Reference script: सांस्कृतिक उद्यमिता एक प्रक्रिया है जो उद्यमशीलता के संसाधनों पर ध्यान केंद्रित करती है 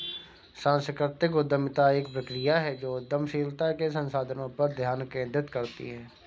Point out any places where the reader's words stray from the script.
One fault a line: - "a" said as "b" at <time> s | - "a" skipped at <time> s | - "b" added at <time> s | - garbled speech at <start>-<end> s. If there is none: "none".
none